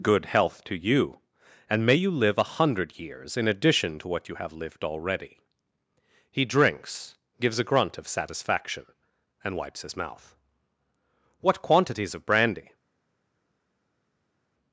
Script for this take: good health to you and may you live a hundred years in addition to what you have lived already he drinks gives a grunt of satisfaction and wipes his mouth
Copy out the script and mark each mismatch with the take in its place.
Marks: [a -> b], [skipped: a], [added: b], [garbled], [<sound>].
good health to you and may you live a hundred years in addition to what you have lived already he drinks gives a grunt of satisfaction and wipes his mouth [added: what quantities of brandy]